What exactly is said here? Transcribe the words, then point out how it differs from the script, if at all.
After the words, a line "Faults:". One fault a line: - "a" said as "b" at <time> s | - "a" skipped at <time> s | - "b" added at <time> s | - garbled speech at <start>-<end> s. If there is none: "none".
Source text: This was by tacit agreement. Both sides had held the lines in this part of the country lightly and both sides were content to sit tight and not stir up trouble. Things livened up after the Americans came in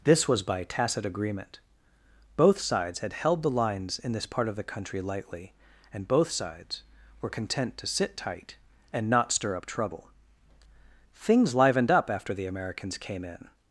This was by tacit agreement. Both sides had held the lines in this part of the country lightly and both sides were content to sit tight and not stir up trouble. Things livened up after the Americans came in
Faults:
none